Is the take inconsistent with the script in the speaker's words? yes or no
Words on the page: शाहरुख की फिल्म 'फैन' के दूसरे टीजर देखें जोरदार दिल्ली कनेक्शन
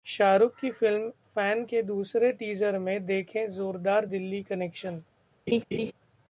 yes